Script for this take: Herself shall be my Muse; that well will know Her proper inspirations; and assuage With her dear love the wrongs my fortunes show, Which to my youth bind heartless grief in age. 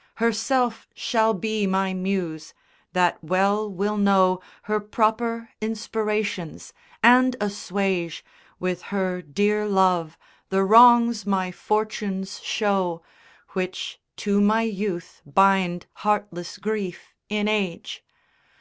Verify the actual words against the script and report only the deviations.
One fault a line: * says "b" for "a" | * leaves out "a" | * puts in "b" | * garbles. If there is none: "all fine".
all fine